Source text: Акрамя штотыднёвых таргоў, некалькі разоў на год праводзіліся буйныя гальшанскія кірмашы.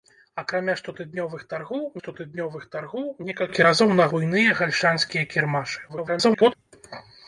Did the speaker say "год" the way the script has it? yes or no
no